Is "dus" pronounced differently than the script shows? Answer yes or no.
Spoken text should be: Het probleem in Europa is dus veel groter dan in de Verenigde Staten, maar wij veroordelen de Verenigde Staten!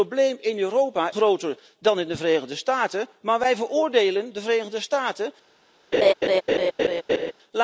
yes